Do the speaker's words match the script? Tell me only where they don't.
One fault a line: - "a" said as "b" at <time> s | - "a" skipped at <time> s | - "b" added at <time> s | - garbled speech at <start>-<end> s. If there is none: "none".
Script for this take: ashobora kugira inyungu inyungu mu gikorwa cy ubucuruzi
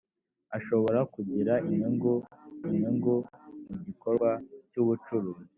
none